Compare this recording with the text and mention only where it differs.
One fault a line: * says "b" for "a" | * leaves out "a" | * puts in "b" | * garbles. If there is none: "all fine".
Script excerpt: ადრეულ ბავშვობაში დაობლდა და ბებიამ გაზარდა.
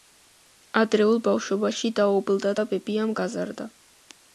all fine